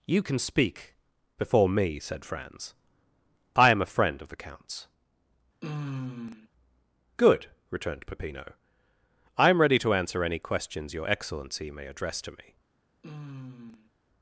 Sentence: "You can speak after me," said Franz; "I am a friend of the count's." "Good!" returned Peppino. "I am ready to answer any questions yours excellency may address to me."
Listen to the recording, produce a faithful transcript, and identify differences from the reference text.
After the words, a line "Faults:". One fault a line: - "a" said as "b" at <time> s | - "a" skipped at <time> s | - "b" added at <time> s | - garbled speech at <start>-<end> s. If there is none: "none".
"You can speak before me," said Franz; "I am a friend of the count's." "Good!" returned Peppino. "I am ready to answer any questions your excellency may address to me."
Faults:
- "after" said as "before" at 1.4 s
- "yours" said as "your" at 10.9 s